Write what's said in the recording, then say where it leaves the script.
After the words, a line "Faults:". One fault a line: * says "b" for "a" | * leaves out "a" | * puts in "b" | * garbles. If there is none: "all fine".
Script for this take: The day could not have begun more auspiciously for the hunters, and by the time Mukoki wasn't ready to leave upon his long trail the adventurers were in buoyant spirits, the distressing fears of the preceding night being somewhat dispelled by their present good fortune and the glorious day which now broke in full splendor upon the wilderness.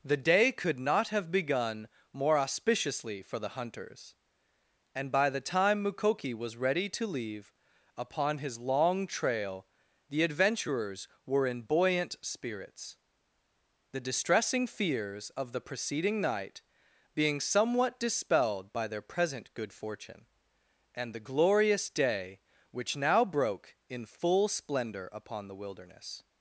The day could not have begun more auspiciously for the hunters, and by the time Mukoki was ready to leave upon his long trail the adventurers were in buoyant spirits, the distressing fears of the preceding night being somewhat dispelled by their present good fortune and the glorious day which now broke in full splendor upon the wilderness.
Faults:
* says "was" for "wasn't"